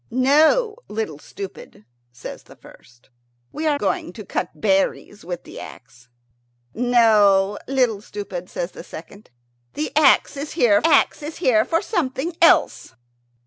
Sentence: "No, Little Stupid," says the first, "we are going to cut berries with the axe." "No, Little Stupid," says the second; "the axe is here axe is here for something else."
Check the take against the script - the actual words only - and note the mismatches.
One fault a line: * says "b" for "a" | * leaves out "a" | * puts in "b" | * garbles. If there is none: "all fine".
all fine